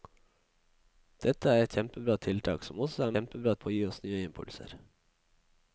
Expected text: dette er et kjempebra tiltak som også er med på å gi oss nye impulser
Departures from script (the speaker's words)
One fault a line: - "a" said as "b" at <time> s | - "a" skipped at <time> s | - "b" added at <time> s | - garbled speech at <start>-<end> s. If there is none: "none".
- "med" said as "kjempebra" at 3.1 s